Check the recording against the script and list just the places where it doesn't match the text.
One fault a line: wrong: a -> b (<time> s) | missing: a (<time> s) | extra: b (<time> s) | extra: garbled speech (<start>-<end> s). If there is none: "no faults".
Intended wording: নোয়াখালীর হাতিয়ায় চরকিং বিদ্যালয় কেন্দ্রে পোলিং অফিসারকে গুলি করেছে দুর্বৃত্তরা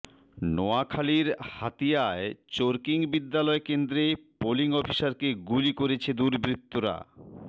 no faults